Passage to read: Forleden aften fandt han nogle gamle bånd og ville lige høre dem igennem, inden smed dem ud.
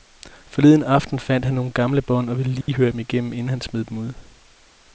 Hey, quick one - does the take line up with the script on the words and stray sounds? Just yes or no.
no